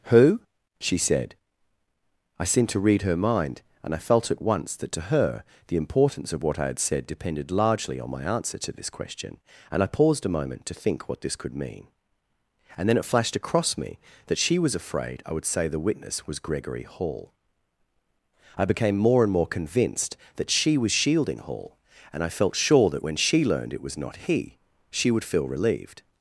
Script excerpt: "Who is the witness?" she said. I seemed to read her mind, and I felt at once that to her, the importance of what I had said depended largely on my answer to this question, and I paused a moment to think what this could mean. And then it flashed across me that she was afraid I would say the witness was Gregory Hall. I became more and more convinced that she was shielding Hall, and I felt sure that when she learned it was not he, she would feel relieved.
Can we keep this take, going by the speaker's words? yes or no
no